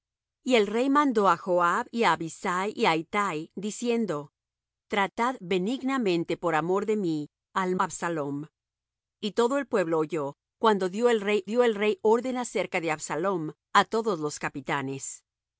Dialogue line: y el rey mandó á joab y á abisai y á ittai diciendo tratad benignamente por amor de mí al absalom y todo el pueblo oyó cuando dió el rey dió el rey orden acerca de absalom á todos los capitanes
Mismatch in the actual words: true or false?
false